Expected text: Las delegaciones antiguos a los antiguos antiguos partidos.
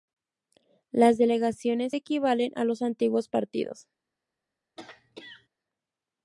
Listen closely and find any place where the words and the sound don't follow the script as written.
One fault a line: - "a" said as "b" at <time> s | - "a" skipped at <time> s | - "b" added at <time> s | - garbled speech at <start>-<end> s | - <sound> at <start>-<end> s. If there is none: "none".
- "antiguos" said as "equivalen" at 1.9 s
- "antiguos" skipped at 3.3 s
- throat clearing at 4.8-5.5 s